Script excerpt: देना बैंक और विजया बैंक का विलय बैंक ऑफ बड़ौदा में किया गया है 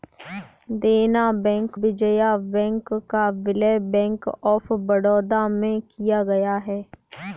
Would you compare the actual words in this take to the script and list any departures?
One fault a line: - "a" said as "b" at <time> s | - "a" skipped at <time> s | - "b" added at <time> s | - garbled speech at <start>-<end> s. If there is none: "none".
- "और" skipped at 1.8 s